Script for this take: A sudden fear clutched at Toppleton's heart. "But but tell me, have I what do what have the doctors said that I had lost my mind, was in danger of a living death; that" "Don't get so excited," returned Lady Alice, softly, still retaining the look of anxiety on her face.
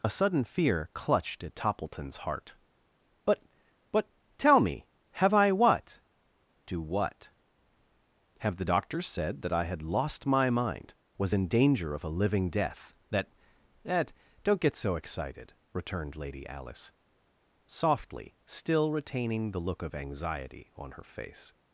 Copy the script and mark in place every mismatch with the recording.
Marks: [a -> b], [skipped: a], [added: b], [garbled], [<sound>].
A sudden fear clutched at Toppleton's heart. "But but tell me, have I what do what have the doctors said that I had lost my mind, was in danger of a living death; that" [added: that] "Don't get so excited," returned Lady Alice, softly, still retaining the look of anxiety on her face.